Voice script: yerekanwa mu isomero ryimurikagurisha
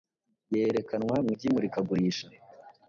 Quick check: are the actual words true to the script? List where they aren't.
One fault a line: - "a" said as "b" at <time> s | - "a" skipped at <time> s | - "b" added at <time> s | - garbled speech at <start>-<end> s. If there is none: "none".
- "isomero" skipped at 1.3 s